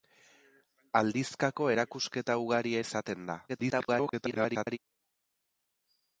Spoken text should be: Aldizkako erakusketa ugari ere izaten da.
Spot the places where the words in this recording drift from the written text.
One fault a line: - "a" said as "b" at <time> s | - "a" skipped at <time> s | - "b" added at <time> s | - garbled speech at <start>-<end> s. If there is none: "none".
- "ere" skipped at 2.8 s
- garbled speech at 3.5-4.8 s